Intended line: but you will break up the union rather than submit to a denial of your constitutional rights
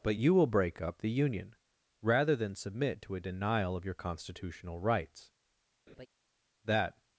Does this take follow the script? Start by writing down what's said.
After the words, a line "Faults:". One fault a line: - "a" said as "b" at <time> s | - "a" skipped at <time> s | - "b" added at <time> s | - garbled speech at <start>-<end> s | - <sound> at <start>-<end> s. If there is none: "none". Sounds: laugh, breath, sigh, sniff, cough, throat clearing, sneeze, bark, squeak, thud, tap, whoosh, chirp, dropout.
but you will break up the union rather than submit to a denial of your constitutional rights that
Faults:
- laugh at 5.9-6.1 s
- "that" added at 6.6 s